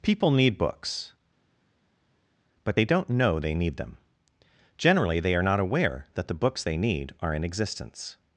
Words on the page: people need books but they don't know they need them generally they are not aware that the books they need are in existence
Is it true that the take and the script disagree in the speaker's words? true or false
false